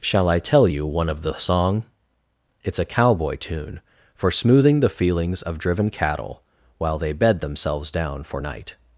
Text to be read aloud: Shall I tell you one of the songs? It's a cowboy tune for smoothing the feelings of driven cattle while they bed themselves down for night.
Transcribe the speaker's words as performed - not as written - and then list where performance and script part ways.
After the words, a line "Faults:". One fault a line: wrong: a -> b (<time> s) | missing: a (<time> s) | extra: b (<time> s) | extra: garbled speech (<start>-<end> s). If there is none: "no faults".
Shall I tell you one of the song? It's a cowboy tune for smoothing the feelings of driven cattle while they bed themselves down for night.
Faults:
wrong: songs -> song (1.3 s)